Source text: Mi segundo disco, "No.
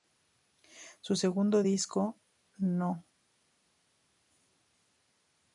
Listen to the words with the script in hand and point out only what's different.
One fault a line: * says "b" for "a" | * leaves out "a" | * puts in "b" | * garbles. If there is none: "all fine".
* says "Su" for "Mi"